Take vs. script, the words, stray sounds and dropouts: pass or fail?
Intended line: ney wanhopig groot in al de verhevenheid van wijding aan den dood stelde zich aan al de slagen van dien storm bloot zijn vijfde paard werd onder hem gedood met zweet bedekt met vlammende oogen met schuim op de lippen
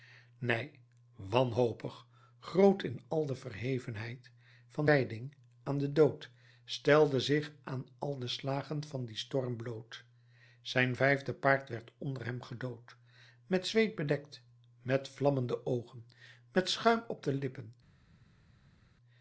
pass